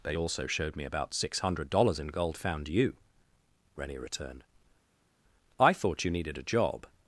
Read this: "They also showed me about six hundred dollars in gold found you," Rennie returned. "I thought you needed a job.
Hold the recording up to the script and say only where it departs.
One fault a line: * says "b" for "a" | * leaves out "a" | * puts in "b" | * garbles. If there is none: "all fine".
all fine